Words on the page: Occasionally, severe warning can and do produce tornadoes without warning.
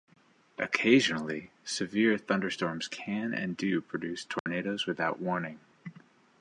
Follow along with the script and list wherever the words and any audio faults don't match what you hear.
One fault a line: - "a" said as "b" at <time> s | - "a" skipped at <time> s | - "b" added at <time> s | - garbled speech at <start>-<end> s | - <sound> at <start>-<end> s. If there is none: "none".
- "warning" said as "thunderstorms" at 2.2 s
- dropout at 4.4-4.5 s